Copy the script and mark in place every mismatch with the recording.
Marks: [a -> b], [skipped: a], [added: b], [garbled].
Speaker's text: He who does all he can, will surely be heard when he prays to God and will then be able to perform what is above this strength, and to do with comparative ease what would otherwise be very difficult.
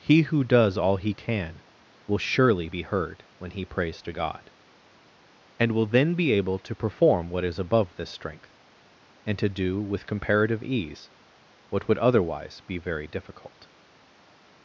He who does all he can, will surely be heard when he prays to God and will then be able to perform what is above this strength, and to do with comparative ease what would otherwise be very difficult.